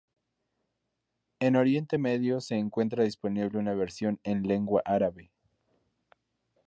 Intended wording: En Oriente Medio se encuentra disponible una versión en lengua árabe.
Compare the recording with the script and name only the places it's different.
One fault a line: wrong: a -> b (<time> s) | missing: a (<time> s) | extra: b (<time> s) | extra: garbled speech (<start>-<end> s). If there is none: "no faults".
no faults